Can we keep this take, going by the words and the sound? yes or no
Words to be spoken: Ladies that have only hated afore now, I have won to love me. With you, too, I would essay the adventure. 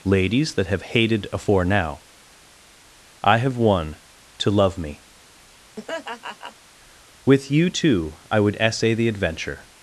no